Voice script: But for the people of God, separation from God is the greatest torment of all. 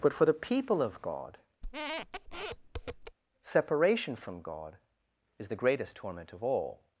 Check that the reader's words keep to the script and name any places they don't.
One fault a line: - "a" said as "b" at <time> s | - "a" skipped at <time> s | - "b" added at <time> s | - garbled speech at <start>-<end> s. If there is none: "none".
none